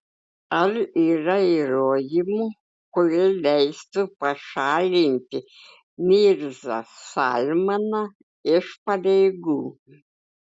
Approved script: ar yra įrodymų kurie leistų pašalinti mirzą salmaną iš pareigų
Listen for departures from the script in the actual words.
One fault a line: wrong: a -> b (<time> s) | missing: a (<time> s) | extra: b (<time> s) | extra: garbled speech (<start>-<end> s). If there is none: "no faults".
no faults